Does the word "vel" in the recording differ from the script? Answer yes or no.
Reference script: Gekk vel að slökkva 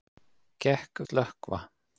yes